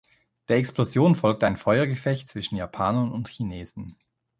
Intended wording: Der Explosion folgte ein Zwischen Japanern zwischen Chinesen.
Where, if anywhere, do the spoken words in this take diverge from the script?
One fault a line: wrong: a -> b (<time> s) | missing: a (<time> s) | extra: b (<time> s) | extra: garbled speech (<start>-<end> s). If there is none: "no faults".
extra: Feuergefecht (1.6 s)
wrong: zwischen -> und (3.1 s)